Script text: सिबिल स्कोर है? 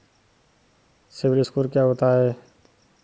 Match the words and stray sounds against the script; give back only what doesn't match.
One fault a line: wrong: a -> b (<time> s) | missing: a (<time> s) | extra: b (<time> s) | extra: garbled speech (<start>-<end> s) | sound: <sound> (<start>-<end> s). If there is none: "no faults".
extra: क्या होता (1.7 s)